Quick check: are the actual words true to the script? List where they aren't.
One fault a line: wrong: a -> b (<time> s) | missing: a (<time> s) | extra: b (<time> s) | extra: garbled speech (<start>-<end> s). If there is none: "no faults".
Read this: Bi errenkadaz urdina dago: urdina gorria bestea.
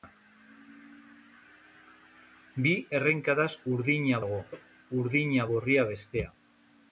no faults